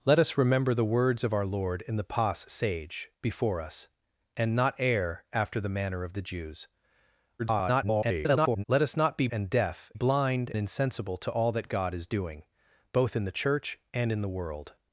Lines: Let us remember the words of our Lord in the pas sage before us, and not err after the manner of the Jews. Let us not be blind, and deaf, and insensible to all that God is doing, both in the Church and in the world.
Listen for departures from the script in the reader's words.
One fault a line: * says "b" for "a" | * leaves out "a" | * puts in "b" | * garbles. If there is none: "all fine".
* garbles
* leaves out "blind"
* says "blind" for "and"